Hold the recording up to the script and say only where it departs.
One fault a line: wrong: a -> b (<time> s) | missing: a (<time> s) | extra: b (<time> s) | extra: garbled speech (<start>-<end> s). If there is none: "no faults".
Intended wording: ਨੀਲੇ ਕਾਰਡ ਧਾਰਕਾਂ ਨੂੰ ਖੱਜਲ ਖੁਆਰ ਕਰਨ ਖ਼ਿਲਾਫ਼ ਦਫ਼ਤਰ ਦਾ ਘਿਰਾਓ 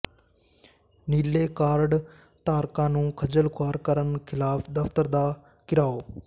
no faults